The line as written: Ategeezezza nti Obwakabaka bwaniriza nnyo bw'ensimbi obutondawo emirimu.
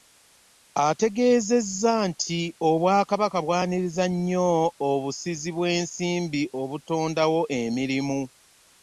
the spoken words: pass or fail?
fail